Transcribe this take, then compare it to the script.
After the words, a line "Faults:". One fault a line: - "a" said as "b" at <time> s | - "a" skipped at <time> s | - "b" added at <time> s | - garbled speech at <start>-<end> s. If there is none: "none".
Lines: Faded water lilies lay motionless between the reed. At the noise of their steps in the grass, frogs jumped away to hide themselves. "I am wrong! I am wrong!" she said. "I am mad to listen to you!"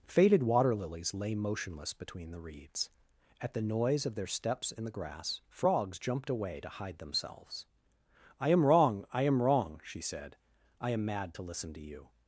Faded water lilies lay motionless between the reeds. At the noise of their steps in the grass, frogs jumped away to hide themselves. "I am wrong! I am wrong!" she said. "I am mad to listen to you!"
Faults:
- "reed" said as "reeds" at 2.4 s